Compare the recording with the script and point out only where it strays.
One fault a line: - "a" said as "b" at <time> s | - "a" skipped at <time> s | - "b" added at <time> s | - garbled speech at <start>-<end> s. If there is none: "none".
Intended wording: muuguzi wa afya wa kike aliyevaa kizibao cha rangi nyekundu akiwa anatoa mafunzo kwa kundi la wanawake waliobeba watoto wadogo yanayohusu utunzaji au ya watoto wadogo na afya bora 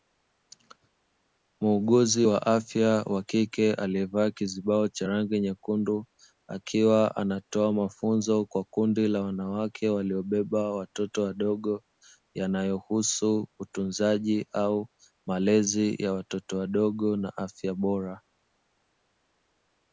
- "malezi" added at 15.3 s